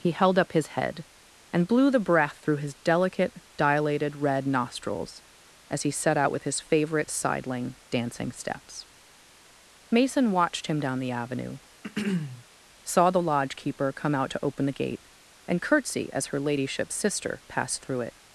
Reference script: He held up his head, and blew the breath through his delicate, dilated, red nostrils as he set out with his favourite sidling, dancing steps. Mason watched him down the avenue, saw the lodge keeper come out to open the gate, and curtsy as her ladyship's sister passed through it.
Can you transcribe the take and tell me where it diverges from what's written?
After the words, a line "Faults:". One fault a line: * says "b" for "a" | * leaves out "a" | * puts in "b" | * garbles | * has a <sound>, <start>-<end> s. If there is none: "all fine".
He held up his head, and blew the breath through his delicate, dilated, red nostrils as he set out with his favourite sidling, dancing steps. Mason watched him down the avenue, saw the lodge keeper come out to open the gate, and curtsy as her ladyship's sister passed through it.
Faults:
* has a throat clearing, 11.8-12.5 s